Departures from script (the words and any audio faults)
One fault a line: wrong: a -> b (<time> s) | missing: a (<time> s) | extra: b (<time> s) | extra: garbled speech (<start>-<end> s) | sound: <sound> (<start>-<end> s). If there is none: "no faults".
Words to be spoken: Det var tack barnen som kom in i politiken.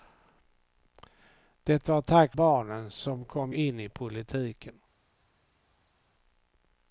no faults